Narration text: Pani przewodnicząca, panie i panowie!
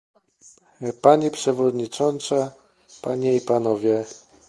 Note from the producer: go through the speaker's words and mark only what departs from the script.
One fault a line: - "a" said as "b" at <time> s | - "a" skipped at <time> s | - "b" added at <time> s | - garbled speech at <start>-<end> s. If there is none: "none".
none